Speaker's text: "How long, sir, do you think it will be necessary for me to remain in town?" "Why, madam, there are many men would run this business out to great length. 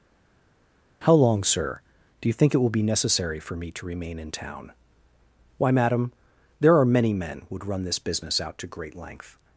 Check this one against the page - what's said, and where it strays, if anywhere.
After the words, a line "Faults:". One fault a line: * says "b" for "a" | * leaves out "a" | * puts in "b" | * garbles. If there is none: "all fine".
"How long, sir, do you think it will be necessary for me to remain in town?" "Why, madam, there are many men would run this business out to great length.
Faults:
all fine